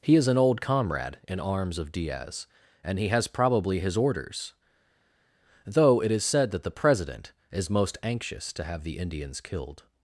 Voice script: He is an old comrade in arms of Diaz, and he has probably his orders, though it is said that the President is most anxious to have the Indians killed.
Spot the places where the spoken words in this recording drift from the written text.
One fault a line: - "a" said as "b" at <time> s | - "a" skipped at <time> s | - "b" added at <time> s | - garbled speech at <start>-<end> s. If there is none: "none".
none